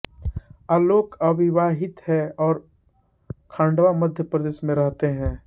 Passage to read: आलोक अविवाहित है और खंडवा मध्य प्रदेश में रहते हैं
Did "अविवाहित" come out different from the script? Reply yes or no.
no